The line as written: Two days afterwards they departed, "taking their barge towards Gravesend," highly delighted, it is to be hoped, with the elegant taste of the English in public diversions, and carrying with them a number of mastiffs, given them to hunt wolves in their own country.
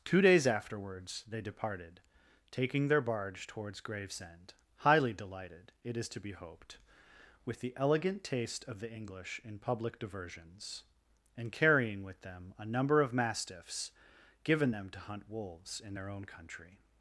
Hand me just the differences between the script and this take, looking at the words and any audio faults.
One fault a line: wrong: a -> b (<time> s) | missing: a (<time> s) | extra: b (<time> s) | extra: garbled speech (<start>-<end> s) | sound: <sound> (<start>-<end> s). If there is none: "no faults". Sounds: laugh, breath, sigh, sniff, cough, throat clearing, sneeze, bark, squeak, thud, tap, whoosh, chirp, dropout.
no faults